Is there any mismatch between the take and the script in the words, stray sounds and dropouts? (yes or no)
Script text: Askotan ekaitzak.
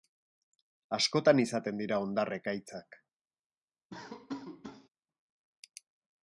yes